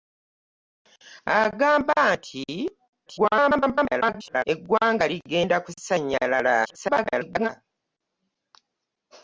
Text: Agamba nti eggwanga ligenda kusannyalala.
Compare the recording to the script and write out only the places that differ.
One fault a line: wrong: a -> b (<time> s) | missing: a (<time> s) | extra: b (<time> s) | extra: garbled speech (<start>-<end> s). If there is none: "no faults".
extra: garbled speech (3.1-4.4 s)
extra: garbled speech (6.6-7.5 s)